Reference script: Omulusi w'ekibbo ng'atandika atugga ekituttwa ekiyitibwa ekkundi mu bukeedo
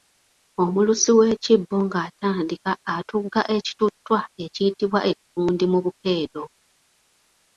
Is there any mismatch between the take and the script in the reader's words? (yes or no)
no